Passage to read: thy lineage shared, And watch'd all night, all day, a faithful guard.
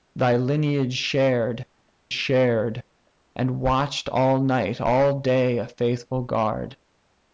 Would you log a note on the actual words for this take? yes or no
yes